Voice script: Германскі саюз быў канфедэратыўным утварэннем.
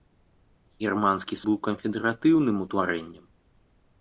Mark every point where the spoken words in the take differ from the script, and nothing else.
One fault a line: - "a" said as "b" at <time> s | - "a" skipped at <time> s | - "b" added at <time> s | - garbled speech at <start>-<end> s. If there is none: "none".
- "саюз" skipped at 1.4 s